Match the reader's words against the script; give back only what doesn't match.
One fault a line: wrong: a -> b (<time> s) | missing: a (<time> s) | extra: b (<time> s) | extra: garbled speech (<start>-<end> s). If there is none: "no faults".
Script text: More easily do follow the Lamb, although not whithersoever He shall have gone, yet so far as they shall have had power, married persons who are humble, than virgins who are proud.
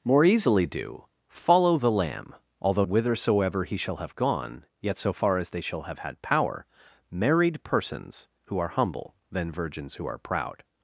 missing: not (2.9 s)